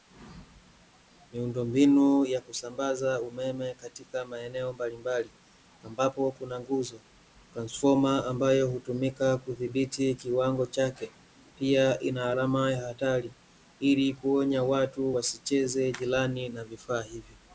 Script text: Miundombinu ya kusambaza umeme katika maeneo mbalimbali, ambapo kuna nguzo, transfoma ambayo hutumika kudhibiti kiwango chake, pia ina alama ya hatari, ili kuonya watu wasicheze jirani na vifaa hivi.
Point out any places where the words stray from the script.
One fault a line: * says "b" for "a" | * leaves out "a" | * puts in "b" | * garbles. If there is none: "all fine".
all fine